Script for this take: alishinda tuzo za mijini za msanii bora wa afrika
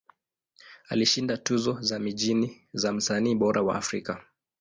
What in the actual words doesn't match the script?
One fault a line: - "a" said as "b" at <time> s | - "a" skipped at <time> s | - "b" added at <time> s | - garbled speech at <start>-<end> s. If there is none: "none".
none